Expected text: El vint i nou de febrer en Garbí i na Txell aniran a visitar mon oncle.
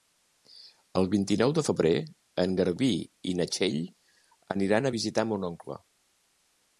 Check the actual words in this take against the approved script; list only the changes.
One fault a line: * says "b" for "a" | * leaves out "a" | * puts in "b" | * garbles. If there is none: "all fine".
all fine